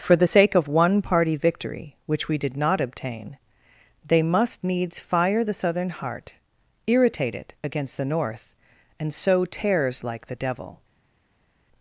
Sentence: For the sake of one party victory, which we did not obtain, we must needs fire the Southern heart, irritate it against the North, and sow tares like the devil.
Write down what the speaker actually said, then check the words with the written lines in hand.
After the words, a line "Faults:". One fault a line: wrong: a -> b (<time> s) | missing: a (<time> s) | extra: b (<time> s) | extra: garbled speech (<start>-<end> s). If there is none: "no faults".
For the sake of one party victory, which we did not obtain, they must needs fire the Southern heart, irritate it against the North, and sow tares like the devil.
Faults:
wrong: we -> they (4.1 s)